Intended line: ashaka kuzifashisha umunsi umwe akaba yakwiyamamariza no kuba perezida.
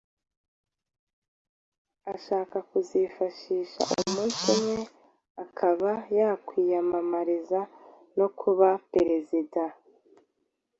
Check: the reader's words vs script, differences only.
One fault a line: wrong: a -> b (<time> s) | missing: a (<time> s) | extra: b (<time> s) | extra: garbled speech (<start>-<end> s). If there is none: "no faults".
no faults